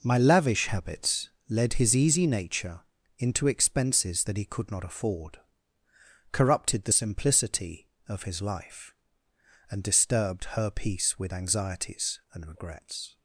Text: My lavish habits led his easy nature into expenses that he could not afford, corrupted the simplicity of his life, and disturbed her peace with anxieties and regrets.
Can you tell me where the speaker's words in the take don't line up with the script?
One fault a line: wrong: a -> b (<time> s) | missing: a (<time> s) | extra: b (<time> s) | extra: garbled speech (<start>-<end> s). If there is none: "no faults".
no faults